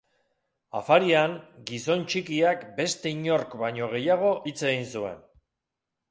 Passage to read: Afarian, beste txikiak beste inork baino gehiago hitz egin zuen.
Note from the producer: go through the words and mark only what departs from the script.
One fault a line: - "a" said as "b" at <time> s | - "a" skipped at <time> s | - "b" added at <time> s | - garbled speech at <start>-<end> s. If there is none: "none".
- "beste" said as "gizon" at 1.7 s